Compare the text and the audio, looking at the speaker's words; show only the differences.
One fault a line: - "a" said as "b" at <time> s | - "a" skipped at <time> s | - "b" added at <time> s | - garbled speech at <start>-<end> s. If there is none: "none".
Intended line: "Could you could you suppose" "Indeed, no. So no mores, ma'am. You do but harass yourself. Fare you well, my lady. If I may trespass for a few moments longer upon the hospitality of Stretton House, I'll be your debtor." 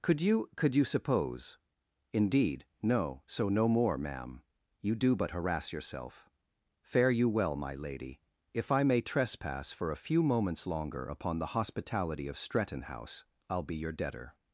- "mores" said as "more" at 3.7 s